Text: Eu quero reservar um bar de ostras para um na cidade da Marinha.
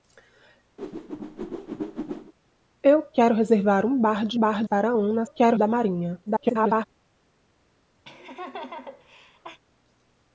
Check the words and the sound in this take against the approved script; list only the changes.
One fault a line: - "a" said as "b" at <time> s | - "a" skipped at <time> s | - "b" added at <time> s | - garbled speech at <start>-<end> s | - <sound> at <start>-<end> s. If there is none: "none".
- whoosh at 0.8-2.3 s
- "ostras" said as "bar" at 4.4 s
- "cidade" said as "quero" at 5.2 s
- garbled speech at 6.3-6.8 s
- laugh at 8.0-9.6 s